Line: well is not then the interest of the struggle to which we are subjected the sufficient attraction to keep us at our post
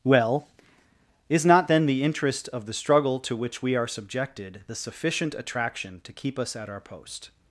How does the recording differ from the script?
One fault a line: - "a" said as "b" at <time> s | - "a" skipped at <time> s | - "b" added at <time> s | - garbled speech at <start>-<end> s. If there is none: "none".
none